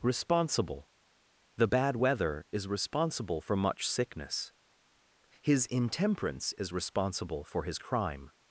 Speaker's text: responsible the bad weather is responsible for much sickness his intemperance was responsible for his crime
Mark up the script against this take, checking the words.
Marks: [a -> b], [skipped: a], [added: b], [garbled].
responsible the bad weather is responsible for much sickness his intemperance [was -> is] responsible for his crime